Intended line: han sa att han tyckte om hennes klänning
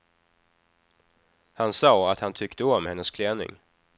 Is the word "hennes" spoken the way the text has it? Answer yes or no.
yes